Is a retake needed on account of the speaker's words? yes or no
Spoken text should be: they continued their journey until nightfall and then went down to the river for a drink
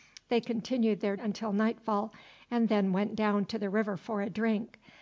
yes